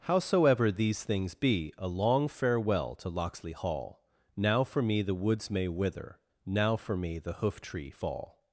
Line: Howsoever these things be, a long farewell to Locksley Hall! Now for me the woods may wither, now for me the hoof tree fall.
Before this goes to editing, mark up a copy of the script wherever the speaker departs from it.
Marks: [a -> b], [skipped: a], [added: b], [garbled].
Howsoever these things be, a long farewell to Locksley Hall! Now for me the woods may wither, now for me the hoof tree fall.